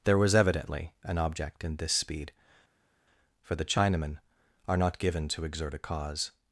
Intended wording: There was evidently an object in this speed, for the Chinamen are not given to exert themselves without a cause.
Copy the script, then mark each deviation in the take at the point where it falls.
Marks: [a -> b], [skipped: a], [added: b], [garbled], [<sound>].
There was evidently an object in this speed, for the Chinamen are not given to exert [skipped: themselves without] a cause.